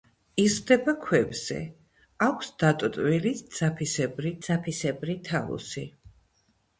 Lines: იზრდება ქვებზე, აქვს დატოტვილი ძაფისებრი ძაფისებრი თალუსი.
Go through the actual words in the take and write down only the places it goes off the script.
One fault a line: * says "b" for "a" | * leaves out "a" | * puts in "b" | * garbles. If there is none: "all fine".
all fine